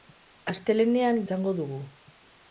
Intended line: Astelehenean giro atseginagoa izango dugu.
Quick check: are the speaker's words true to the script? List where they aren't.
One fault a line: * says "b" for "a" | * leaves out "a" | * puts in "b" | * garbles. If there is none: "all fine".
* leaves out "giro atseginagoa"